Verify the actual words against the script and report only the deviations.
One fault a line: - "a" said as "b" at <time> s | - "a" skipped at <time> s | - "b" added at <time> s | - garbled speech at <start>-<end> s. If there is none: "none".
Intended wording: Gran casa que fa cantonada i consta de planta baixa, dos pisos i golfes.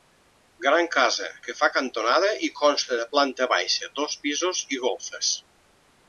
none